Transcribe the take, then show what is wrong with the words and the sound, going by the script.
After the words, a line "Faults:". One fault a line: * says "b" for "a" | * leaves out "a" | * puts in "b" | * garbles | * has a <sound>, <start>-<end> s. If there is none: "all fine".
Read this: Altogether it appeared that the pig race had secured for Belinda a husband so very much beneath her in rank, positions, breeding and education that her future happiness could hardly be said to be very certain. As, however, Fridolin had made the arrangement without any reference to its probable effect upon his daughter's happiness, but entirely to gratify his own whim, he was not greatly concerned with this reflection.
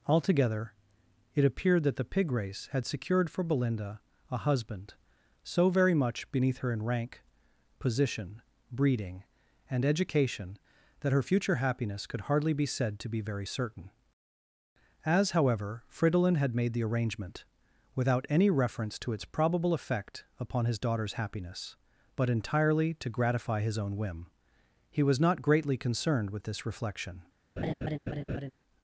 Altogether it appeared that the pig race had secured for Belinda a husband so very much beneath her in rank, position, breeding and education that her future happiness could hardly be said to be very certain. As, however, Fridolin had made the arrangement without any reference to its probable effect upon his daughter's happiness, but entirely to gratify his own whim, he was not greatly concerned with this reflection.
Faults:
* says "position" for "positions"
* has a laugh, 27.6-28.5 s